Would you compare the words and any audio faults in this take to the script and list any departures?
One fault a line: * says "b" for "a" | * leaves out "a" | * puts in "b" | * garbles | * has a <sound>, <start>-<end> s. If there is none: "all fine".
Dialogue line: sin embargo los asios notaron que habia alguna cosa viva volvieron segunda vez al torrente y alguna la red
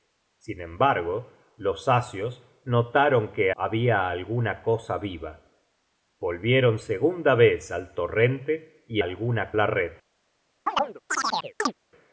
* has a chirp, 10.7-11.7 s